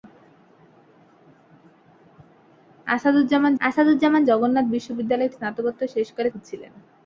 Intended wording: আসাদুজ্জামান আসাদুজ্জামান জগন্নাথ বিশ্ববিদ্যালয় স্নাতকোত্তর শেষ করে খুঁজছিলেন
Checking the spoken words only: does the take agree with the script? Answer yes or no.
yes